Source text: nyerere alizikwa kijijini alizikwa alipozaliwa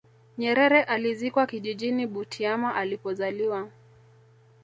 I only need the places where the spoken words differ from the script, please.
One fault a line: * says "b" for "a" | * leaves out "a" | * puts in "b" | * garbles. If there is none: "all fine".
* says "butiama" for "alizikwa"